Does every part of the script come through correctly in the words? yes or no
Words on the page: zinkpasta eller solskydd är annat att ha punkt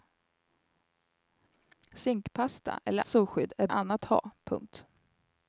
yes